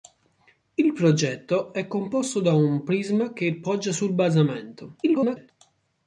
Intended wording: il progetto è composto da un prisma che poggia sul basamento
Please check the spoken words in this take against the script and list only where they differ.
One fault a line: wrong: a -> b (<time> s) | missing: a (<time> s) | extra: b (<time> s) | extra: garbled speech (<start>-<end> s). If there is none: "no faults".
extra: garbled speech (5.0-5.5 s)